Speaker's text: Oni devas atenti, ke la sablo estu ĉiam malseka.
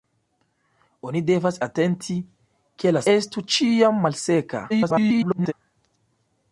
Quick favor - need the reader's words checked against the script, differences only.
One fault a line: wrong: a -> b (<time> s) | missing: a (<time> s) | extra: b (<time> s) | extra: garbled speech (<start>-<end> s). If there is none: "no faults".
missing: sablo (3.0 s)
extra: garbled speech (4.7-5.5 s)